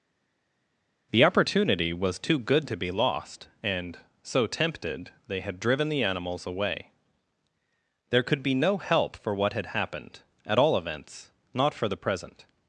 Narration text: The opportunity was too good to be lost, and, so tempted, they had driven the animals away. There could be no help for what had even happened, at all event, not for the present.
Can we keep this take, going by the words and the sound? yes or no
no